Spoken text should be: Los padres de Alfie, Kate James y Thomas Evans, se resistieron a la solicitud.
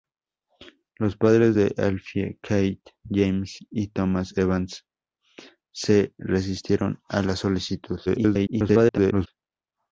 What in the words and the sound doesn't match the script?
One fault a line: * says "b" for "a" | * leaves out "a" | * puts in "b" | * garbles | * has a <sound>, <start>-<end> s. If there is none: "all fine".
* garbles